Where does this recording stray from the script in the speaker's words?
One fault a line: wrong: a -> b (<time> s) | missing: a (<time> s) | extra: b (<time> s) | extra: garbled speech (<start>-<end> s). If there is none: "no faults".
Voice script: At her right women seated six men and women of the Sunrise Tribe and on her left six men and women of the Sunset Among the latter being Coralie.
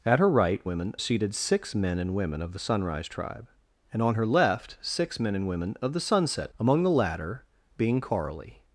no faults